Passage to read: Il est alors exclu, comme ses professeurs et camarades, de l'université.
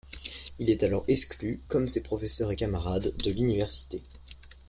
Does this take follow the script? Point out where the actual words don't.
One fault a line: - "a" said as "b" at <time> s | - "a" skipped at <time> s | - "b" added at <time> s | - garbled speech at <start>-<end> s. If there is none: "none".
none